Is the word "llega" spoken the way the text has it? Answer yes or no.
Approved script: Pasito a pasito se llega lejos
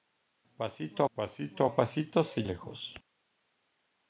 no